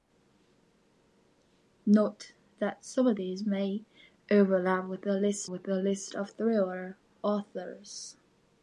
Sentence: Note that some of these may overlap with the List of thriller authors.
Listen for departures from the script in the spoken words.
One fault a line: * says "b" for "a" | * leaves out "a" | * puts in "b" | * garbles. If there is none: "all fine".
* puts in "with the List"